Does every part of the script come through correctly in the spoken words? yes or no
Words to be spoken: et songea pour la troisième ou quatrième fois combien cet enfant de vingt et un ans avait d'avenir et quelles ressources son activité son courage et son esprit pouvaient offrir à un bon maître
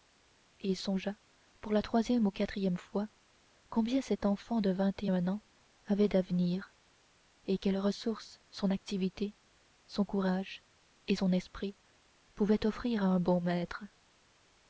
yes